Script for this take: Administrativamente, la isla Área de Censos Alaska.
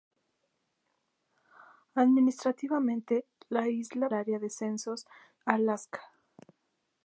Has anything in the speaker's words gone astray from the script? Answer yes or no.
no